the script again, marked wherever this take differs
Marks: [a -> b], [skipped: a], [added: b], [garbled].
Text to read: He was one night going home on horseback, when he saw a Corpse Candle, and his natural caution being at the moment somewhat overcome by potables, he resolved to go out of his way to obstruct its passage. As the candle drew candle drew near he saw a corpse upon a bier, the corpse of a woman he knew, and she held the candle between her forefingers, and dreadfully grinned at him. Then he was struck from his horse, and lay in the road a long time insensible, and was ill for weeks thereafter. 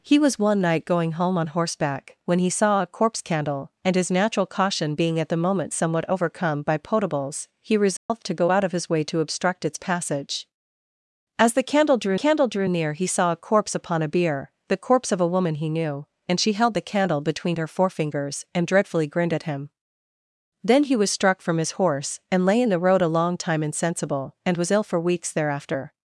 He was one night going home on horseback, when he saw a Corpse Candle, and his natural caution being at the moment somewhat overcome by potables, he resolved to go out of his way to obstruct its passage. As the candle drew candle drew near he saw a corpse upon a bier, the corpse of a woman he knew, and she held the candle between her forefingers, and dreadfully grinned at him. Then he was struck from his horse, and lay in the road a long time insensible, and was ill for weeks thereafter.